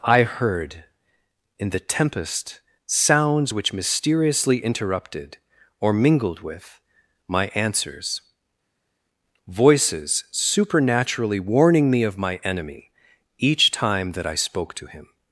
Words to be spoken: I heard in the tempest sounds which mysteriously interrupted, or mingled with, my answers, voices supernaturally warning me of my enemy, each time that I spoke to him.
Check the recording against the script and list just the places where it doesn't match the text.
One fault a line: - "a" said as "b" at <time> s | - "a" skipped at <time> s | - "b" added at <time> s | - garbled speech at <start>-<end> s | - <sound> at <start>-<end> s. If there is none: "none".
none